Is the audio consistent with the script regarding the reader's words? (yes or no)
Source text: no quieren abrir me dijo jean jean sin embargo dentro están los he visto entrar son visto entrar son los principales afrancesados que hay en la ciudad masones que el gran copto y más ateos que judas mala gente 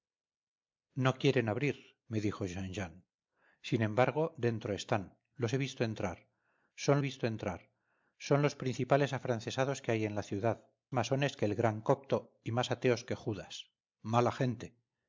yes